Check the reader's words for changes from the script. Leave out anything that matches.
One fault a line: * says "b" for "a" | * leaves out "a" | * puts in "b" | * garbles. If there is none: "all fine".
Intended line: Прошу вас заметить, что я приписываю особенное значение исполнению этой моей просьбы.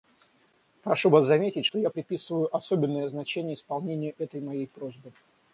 all fine